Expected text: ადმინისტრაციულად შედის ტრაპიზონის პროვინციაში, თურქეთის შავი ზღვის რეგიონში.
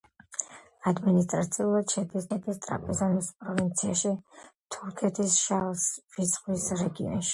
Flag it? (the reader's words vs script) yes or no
yes